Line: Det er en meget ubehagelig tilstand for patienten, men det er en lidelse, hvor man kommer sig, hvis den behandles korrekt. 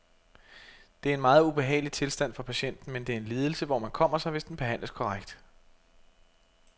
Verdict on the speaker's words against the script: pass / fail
pass